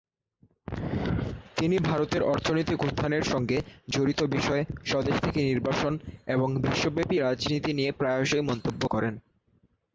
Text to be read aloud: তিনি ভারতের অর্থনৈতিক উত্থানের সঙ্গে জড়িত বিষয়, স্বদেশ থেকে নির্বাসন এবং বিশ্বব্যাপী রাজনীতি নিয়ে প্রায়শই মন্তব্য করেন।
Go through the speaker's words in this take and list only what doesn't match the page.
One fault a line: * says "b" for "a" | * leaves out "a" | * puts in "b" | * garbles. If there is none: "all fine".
all fine